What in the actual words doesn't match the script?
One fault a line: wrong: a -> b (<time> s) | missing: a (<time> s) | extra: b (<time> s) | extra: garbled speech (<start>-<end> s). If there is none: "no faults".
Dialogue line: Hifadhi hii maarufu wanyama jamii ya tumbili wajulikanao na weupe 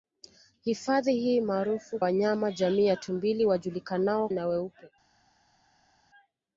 no faults